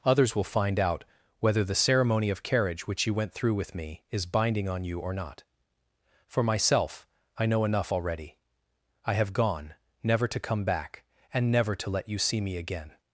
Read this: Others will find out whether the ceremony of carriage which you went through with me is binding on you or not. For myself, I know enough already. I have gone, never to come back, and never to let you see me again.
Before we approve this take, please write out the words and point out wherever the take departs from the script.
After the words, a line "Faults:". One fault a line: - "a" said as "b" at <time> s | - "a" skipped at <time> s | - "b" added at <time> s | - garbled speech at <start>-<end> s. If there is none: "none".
Others will find out whether the ceremony of carriage which you went through with me is binding on you or not. For myself, I know enough already. I have gone, never to come back, and never to let you see me again.
Faults:
none